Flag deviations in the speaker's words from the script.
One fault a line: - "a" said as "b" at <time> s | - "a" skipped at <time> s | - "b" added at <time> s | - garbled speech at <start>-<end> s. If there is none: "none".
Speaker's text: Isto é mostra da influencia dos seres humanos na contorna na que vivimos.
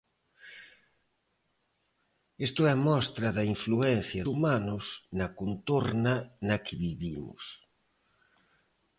- "dos seres" skipped at 4.2 s